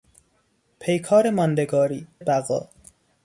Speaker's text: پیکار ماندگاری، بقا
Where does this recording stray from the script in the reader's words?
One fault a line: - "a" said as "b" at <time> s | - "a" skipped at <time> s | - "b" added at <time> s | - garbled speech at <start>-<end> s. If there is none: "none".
none